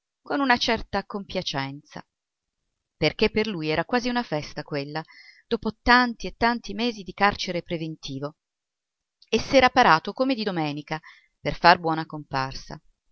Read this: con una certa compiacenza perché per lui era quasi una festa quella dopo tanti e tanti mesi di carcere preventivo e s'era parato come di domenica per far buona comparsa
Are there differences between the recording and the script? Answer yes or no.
no